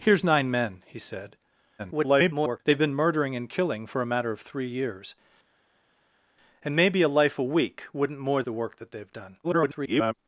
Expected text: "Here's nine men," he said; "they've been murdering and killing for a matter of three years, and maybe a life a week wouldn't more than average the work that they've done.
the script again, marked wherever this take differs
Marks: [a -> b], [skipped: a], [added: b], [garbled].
"Here's nine men," he said; [garbled] "they've been murdering and killing for a matter of three years, and maybe a life a week wouldn't more [skipped: than average] the work that they've done. [garbled]